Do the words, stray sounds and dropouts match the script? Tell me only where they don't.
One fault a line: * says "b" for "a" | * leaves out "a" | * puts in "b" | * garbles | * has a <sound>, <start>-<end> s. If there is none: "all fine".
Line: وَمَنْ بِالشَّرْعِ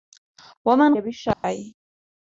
* has a dropout, 1.3-1.4 s